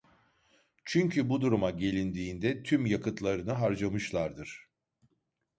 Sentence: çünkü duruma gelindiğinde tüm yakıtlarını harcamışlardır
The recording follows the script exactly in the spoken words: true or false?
false